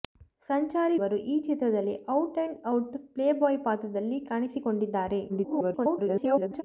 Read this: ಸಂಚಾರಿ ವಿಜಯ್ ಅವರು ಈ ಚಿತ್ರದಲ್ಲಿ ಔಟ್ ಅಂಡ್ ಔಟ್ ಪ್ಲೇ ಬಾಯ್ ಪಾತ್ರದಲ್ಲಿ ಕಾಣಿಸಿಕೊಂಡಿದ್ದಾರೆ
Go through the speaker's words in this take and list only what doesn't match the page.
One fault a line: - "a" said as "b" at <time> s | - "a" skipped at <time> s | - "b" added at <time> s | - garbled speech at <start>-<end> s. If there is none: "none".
- "ವಿಜಯ್" skipped at 0.9 s
- garbled speech at 5.3-6.6 s